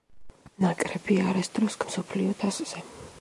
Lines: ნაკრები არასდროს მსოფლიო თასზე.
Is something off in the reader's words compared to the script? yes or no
no